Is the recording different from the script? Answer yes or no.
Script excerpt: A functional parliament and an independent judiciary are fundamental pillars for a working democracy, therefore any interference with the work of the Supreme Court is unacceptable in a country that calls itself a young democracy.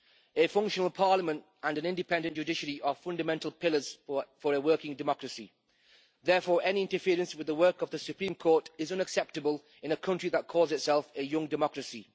no